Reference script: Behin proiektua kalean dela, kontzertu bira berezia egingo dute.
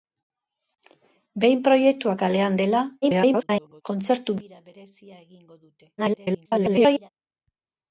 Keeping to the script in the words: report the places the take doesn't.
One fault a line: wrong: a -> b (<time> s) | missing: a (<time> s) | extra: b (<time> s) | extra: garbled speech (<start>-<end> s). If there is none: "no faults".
extra: garbled speech (3.0-3.8 s)
extra: garbled speech (6.0-7.1 s)